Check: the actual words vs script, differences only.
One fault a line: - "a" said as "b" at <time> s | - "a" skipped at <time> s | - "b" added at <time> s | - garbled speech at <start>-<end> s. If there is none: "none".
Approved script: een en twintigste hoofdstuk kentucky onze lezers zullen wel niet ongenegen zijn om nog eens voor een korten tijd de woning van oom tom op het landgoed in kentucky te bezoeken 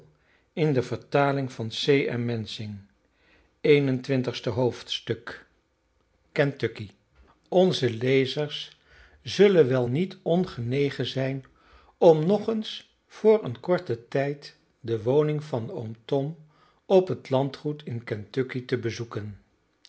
none